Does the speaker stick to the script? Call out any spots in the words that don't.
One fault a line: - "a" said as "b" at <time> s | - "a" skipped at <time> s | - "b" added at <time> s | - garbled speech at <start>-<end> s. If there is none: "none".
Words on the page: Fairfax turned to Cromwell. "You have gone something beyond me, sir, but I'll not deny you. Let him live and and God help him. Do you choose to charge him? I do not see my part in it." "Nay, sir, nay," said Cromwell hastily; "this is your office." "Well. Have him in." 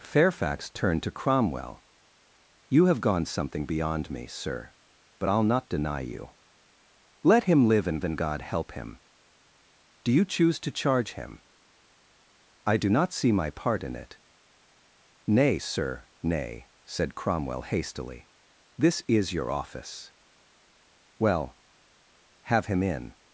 none